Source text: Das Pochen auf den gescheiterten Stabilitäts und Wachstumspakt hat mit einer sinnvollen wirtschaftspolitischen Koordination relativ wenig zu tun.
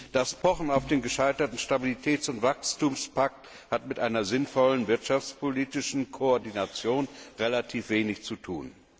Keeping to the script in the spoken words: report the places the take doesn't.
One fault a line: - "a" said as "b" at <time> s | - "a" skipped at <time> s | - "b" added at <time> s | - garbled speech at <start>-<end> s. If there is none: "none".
none